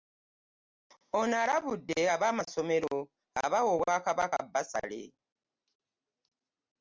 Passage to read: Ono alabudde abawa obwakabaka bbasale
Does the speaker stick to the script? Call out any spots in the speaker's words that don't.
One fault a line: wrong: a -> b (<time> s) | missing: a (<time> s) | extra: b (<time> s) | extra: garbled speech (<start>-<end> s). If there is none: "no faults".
extra: ab'amasomero (2.1 s)